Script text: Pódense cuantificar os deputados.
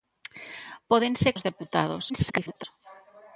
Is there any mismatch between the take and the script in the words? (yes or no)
yes